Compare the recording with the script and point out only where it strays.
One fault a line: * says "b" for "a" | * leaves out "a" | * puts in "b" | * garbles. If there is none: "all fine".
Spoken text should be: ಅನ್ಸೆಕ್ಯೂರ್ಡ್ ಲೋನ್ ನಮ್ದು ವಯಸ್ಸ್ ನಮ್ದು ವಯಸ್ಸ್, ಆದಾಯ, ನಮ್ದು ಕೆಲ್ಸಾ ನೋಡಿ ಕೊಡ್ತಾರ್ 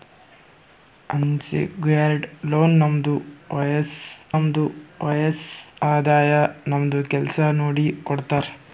all fine